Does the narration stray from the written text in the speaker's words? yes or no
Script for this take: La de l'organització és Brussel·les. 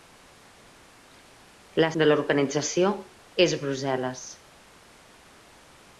no